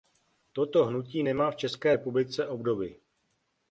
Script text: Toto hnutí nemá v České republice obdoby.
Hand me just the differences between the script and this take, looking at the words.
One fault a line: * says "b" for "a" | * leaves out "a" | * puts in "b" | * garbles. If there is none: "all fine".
all fine